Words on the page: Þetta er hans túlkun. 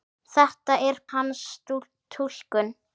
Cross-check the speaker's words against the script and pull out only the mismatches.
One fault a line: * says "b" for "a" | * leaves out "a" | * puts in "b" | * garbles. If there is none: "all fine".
all fine